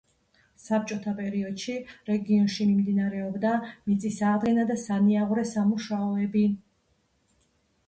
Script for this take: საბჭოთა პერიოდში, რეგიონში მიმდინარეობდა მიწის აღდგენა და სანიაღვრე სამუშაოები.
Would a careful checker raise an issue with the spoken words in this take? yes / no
no